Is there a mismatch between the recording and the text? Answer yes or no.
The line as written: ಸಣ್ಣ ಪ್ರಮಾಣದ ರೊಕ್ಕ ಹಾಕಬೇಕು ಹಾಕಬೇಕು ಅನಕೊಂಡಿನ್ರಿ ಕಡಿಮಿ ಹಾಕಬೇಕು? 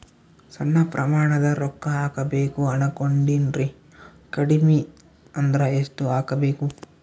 yes